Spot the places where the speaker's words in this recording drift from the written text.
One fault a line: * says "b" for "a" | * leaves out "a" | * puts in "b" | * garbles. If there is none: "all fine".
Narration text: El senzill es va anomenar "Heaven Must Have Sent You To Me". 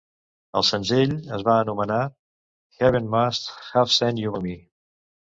all fine